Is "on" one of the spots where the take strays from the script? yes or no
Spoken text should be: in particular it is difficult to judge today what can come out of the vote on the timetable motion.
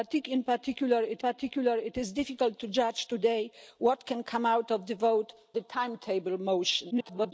yes